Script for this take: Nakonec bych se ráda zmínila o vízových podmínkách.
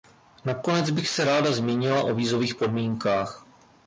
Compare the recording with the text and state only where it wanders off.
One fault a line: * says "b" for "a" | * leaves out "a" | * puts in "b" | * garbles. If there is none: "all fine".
all fine